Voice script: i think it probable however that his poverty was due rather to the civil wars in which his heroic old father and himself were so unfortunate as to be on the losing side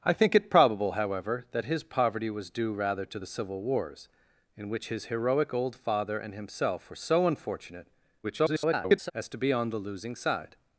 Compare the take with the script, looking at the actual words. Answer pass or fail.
fail